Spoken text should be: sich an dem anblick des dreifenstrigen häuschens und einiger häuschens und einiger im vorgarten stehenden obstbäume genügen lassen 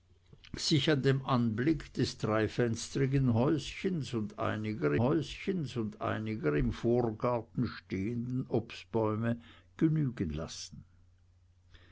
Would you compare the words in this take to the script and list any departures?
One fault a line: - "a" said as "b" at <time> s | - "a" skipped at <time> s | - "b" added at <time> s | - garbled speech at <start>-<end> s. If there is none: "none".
none